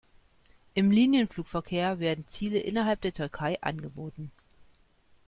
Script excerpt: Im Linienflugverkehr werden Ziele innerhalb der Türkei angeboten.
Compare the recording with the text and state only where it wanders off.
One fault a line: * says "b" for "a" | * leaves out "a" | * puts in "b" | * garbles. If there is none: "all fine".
all fine